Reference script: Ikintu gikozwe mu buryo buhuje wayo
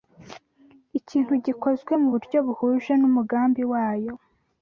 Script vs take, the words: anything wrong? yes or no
yes